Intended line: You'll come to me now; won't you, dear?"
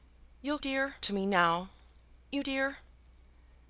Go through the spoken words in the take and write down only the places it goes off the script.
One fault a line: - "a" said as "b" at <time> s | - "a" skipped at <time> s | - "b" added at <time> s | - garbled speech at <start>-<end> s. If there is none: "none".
- "come" said as "dear" at 0.6 s
- "won't" skipped at 1.7 s